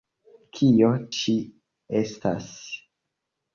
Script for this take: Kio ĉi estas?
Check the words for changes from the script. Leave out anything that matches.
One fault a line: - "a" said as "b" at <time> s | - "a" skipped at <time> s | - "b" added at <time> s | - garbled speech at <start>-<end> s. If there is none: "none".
none